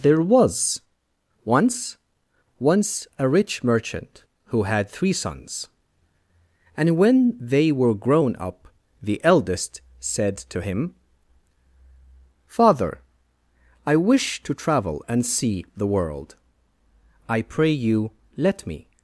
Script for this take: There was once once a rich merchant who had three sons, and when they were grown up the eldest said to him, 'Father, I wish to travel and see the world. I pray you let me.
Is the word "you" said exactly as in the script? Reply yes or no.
yes